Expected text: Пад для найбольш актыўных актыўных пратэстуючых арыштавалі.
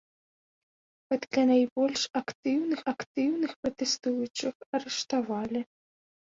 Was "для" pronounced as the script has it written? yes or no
yes